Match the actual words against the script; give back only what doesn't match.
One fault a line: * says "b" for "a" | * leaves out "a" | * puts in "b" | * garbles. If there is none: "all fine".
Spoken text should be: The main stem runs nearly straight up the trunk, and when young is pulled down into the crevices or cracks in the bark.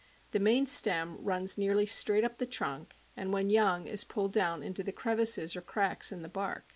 all fine